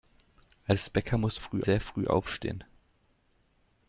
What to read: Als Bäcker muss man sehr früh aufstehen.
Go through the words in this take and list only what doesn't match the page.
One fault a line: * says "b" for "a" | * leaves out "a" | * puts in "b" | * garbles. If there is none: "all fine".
* says "früh" for "man"